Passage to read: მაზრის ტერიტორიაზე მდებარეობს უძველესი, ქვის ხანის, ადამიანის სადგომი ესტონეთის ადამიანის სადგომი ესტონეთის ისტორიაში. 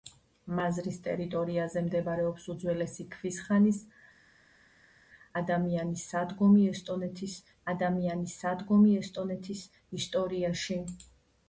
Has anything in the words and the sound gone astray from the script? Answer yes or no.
no